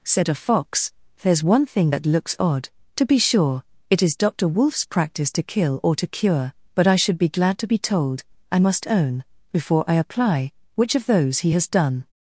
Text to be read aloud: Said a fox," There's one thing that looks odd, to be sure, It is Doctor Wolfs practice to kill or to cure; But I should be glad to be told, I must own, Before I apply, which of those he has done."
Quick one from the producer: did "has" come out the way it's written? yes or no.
yes